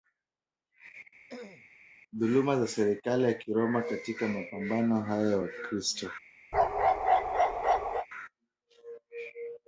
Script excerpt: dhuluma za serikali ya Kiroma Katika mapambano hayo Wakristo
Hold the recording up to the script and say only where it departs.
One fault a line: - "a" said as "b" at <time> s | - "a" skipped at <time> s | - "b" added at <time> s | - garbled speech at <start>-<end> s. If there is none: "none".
none